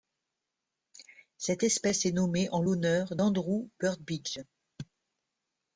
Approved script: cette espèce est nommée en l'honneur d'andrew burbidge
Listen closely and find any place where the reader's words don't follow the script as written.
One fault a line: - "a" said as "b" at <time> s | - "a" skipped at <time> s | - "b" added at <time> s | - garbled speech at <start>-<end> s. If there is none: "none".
none